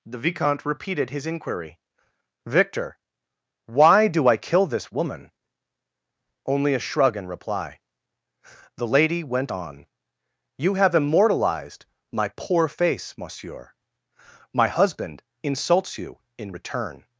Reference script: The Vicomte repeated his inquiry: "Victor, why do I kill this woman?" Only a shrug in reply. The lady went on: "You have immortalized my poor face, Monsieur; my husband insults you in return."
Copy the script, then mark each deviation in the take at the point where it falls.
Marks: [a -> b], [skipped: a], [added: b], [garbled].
The Vicomte repeated his inquiry: "Victor, why do I kill this woman?" Only a shrug in reply. The lady went on: "You have immortalized my poor face, Monsieur; my husband insults you in return."